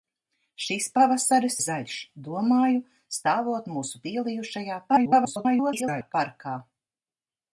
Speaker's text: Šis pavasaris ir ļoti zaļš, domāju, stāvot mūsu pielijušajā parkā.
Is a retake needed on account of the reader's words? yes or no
yes